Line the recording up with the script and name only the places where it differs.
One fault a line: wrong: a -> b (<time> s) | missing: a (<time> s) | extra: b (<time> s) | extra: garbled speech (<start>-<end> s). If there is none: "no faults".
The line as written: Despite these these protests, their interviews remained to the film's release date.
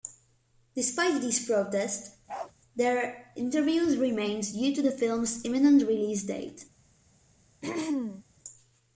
missing: these (1.4 s)
extra: due (4.5 s)
extra: imminent (5.4 s)